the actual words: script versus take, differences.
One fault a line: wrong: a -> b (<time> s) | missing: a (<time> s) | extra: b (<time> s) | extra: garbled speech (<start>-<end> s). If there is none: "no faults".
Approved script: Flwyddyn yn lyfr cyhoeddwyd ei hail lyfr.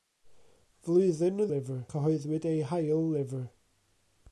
no faults